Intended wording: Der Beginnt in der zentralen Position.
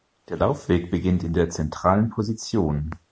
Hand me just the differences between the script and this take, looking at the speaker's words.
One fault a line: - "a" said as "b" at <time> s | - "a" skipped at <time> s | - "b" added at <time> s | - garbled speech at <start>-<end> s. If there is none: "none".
- "Laufweg" added at 0.4 s